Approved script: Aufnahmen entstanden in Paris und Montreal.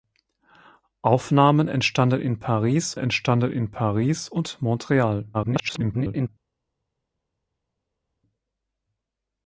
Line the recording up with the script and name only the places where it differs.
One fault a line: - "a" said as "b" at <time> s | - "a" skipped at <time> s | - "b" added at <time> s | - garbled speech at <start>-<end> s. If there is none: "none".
- "entstanden in Paris" added at 3.0 s
- garbled speech at 5.3-6.3 s